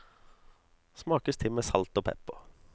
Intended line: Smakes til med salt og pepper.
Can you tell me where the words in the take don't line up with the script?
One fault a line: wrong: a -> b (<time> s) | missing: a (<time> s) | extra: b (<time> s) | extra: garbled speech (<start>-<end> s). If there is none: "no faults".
no faults